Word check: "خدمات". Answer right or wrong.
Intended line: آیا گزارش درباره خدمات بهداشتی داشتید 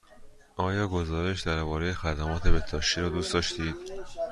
right